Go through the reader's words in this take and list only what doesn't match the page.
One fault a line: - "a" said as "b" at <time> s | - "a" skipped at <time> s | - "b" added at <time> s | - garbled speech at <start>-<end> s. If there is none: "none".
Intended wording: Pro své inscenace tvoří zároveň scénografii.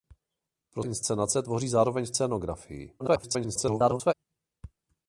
- "své" skipped at 0.8 s
- garbled speech at 3.0-4.1 s